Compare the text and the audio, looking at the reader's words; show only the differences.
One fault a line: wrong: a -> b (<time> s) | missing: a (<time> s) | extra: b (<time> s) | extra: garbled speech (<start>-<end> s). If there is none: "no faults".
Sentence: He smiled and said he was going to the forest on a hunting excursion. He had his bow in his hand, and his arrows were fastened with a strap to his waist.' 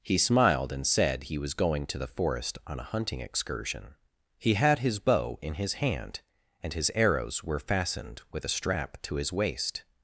no faults